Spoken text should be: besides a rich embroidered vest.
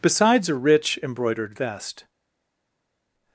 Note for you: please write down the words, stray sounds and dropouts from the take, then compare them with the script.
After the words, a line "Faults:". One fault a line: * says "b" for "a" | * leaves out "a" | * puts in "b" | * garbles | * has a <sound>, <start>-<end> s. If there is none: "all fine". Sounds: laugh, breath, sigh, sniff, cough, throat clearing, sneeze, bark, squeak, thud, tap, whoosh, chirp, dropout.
besides a rich embroidered vest.
Faults:
all fine